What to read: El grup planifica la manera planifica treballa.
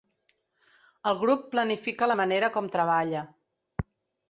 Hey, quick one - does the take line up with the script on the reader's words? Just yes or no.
no